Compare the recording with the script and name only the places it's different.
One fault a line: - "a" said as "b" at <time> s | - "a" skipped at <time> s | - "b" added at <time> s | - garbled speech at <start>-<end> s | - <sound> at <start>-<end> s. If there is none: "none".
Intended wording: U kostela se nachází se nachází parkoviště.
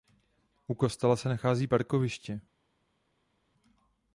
- "se nachází" skipped at 1.7 s